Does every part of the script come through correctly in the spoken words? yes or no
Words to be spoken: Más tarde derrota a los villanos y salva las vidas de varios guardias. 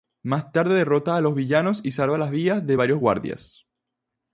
yes